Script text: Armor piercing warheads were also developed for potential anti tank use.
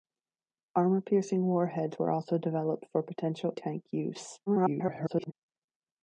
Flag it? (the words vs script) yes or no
yes